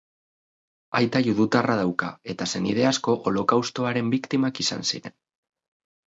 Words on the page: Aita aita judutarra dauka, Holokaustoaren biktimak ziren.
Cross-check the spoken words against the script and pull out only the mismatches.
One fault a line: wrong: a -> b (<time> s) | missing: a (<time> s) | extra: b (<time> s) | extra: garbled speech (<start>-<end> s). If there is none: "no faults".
missing: aita (1.2 s)
extra: eta senide asko (2.4 s)
extra: izan (4.7 s)